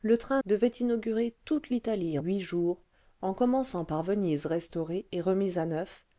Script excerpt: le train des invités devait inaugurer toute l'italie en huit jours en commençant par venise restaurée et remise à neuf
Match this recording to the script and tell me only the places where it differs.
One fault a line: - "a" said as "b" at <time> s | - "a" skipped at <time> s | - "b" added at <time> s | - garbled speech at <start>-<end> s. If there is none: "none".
- "des invités" skipped at 0.4 s
- "en" skipped at 2.2 s